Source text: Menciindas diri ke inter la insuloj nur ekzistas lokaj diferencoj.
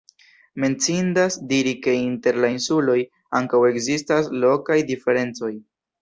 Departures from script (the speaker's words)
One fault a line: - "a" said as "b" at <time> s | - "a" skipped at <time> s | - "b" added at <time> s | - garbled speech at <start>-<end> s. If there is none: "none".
- "nur" said as "ankaŭ" at 3.4 s